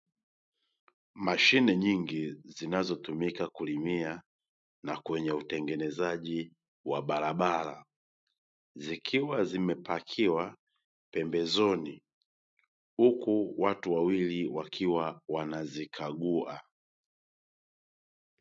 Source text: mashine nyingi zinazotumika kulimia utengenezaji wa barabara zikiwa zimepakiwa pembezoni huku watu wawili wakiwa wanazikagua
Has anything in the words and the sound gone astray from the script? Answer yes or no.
yes